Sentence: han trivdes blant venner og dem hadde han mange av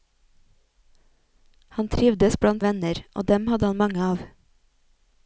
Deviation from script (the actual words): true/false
false